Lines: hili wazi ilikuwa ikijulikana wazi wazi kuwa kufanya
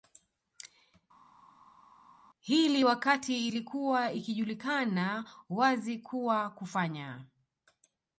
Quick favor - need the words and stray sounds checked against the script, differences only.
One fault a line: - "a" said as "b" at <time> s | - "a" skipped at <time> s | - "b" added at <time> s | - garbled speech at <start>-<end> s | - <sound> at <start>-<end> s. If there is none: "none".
- "wazi" said as "wakati" at 2.8 s
- "wazi" skipped at 6.0 s